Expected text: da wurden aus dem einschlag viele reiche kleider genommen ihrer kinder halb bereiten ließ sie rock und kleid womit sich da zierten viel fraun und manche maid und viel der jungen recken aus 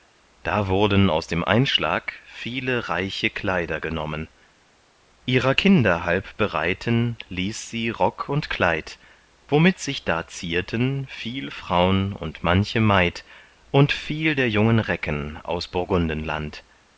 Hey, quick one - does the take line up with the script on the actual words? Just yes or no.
yes